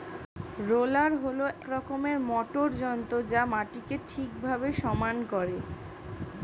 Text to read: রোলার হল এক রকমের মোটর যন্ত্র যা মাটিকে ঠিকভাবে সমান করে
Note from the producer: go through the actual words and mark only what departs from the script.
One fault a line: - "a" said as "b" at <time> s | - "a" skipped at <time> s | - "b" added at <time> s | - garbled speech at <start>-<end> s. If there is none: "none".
- "এক" skipped at 1.4 s